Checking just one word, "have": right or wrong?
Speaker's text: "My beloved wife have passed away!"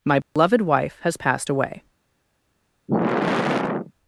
wrong